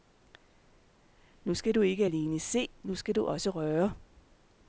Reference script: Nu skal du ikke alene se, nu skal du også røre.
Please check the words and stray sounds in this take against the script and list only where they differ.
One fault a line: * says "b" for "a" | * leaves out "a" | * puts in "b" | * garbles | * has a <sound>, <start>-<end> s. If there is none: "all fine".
all fine